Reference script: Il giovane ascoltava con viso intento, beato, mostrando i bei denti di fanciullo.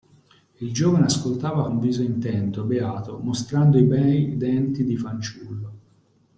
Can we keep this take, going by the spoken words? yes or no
yes